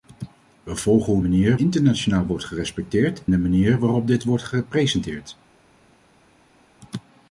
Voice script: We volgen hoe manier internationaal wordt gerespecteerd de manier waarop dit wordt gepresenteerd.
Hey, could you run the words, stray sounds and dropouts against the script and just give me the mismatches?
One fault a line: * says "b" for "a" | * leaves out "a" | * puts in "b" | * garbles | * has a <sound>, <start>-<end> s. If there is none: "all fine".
all fine